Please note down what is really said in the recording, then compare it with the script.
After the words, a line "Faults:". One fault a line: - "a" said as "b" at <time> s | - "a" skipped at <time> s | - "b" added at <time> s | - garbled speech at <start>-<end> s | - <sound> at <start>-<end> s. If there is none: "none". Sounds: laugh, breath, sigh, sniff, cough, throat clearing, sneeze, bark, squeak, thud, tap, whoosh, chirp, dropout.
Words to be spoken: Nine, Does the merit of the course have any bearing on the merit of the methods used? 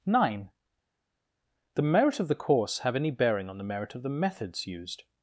Nine, the merit of the course have any bearing on the merit of the methods used?
Faults:
- "Does" skipped at 0.5 s